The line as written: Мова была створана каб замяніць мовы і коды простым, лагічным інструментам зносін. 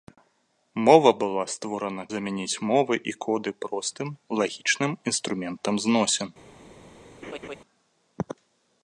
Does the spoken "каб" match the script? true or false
false